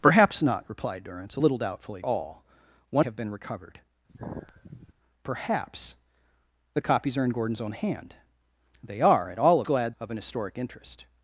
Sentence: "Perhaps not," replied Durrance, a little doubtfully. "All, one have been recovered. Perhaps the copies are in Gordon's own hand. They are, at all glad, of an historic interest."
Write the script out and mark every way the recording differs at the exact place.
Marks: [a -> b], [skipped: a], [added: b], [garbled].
"Perhaps not," replied Durrance, a little doubtfully. "All, one have been recovered. Perhaps the copies are in Gordon's own hand. They are, at all glad, of an historic interest."